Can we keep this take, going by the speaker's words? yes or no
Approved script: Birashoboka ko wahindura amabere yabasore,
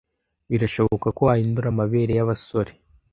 yes